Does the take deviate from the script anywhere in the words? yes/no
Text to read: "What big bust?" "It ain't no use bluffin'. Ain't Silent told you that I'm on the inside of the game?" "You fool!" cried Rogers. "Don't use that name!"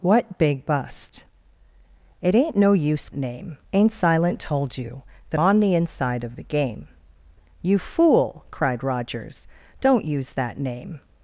yes